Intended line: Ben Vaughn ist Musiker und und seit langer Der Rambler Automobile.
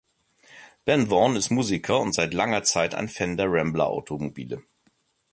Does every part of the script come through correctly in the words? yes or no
no